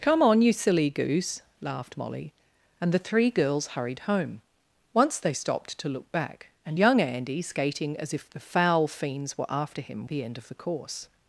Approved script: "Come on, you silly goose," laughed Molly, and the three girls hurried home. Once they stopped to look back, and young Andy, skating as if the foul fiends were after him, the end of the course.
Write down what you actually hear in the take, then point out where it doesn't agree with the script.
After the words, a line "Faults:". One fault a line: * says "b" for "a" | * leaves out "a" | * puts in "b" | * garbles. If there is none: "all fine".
"Come on, you silly goose," laughed Molly, and the three girls hurried home. Once they stopped to look back, and young Andy, skating as if the foul fiends were after him, the end of the course.
Faults:
all fine